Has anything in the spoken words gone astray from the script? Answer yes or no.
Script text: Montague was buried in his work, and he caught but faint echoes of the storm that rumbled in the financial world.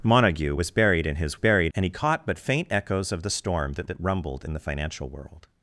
yes